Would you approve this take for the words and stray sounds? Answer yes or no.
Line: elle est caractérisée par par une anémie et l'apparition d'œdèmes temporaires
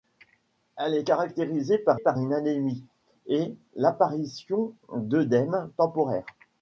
yes